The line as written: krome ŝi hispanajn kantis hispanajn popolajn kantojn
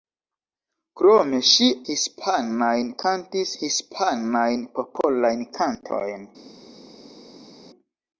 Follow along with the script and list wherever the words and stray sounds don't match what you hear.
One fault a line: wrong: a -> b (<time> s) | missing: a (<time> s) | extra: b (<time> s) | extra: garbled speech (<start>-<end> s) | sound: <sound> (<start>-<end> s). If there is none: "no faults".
no faults